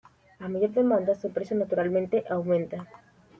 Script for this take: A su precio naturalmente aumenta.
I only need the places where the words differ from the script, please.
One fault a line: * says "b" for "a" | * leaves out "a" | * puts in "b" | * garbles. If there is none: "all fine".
* puts in "mayor demanda"